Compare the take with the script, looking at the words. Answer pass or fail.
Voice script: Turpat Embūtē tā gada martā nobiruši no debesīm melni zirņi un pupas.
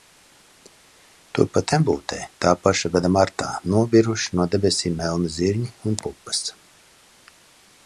fail